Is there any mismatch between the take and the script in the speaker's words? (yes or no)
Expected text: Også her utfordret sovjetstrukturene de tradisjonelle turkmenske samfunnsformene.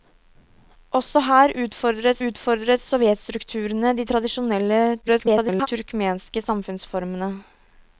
yes